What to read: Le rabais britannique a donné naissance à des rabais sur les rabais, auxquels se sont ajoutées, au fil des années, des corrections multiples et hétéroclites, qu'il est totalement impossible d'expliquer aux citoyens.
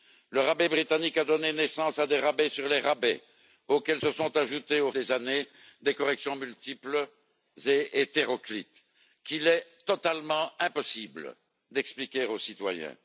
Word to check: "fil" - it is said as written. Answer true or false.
false